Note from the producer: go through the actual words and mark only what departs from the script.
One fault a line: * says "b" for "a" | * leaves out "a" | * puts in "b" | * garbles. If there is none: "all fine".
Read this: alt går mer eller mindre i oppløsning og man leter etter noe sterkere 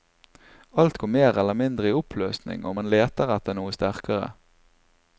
all fine